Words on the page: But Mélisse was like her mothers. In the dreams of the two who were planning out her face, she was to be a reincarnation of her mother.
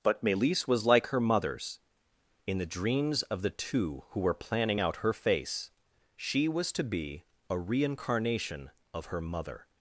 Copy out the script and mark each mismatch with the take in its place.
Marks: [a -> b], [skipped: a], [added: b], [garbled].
But Mélisse was like her mothers. In the dreams of the two who were planning out her face, she was to be a reincarnation of her mother.